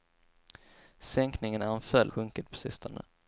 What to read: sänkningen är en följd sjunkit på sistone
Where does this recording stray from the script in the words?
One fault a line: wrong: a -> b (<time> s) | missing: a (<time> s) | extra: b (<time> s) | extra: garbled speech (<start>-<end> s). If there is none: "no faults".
no faults